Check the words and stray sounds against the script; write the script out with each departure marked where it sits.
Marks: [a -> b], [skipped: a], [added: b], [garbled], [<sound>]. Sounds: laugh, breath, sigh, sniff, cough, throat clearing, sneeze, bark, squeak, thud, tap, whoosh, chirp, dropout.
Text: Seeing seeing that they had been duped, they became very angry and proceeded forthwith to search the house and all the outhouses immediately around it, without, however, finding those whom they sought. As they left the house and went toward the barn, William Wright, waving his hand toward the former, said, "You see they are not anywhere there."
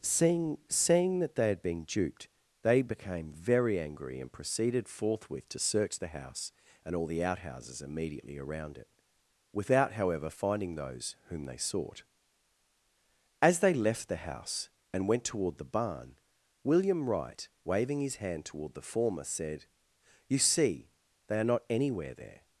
Seeing seeing that they had been duped, they became very angry and proceeded forthwith to search the house and all the outhouses immediately around it, without, however, finding those whom they sought. As they left the house and went toward the barn, William Wright, waving his hand toward the former, said, "You see they are not anywhere there."